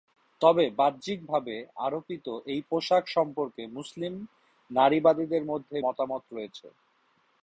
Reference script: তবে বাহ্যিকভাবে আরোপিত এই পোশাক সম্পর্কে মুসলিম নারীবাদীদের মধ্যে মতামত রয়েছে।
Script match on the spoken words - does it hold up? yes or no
yes